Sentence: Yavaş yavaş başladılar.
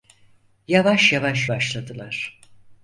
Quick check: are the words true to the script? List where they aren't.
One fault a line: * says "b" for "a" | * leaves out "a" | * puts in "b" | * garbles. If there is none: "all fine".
all fine